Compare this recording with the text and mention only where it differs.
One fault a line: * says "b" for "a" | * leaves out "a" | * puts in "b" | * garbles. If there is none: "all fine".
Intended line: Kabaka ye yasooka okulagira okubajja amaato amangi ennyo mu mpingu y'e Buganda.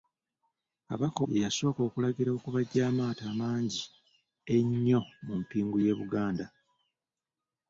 all fine